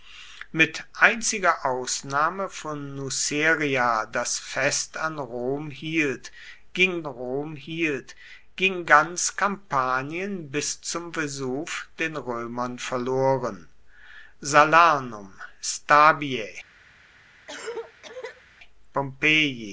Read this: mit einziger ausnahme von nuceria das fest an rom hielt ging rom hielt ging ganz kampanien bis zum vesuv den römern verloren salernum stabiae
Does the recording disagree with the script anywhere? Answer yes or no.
no